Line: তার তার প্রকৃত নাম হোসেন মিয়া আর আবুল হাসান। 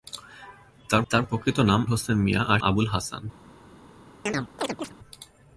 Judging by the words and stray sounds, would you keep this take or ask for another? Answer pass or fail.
fail